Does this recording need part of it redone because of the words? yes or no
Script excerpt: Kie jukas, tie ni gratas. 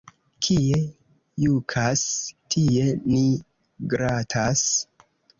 no